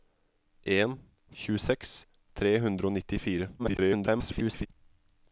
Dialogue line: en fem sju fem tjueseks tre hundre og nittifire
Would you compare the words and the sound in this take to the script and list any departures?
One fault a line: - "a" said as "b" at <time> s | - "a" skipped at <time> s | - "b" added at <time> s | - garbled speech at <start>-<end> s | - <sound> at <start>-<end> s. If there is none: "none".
- "fem sju fem" skipped at 0.9 s
- garbled speech at 3.6-4.7 s